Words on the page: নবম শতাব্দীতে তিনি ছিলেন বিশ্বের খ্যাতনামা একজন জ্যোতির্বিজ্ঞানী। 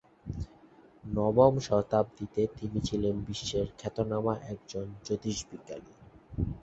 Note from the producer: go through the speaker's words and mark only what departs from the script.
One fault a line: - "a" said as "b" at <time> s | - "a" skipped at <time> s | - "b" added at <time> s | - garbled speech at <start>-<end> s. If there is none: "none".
none